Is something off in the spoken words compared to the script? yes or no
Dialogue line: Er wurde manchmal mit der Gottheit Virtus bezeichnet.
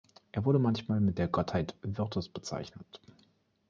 no